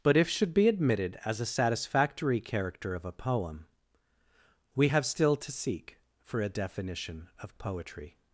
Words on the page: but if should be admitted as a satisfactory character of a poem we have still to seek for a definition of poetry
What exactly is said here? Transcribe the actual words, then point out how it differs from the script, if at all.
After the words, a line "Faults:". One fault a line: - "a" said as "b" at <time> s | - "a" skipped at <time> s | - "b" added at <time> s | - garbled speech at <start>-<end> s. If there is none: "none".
but if should be admitted as a satisfactory character of a poem we have still to seek for a definition of poetry
Faults:
none